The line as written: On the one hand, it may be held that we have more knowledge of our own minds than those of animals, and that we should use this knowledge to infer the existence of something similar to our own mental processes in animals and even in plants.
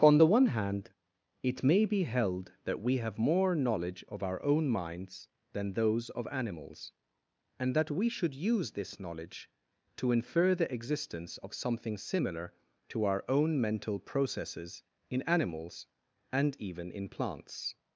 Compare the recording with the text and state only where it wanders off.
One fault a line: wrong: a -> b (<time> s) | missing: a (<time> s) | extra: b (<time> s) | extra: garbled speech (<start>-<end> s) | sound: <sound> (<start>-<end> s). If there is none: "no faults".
no faults